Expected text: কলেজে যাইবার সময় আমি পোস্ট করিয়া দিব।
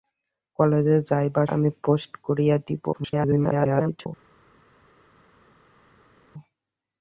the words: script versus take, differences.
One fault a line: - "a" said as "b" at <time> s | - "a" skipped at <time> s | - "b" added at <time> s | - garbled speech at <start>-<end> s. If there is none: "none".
- "সময়" skipped at 1.5 s
- garbled speech at 2.9-4.1 s